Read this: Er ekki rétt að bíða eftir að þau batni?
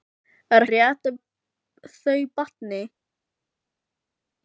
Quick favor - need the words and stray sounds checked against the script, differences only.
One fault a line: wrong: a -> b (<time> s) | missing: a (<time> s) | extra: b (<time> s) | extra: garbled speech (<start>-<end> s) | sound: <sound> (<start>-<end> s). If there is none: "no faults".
missing: ekki (0.6 s)
missing: bíða eftir (1.2 s)